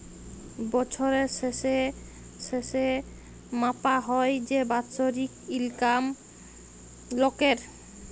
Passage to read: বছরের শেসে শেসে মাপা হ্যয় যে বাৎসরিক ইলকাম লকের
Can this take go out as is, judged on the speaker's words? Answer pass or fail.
pass